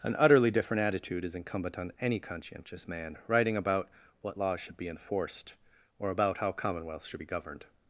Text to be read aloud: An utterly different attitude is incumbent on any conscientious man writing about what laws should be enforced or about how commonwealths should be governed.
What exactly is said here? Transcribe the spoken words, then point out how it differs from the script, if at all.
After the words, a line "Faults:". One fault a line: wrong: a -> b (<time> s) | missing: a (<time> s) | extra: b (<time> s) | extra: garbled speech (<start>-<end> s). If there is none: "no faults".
An utterly different attitude is incumbent on any conscientious man writing about what laws should be enforced or about how commonwealths should be governed.
Faults:
no faults